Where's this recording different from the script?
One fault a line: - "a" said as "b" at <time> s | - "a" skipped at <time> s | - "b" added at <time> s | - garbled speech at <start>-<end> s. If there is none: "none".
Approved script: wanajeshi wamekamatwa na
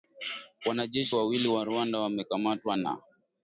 - "wawili wa rwanda" added at 1.1 s